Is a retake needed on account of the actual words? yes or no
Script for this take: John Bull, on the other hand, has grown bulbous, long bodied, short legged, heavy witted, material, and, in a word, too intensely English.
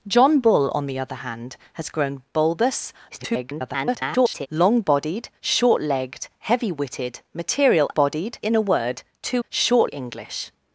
yes